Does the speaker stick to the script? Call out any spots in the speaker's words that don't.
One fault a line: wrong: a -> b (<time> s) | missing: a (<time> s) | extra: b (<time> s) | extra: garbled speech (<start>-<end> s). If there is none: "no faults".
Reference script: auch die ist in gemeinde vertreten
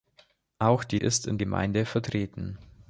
no faults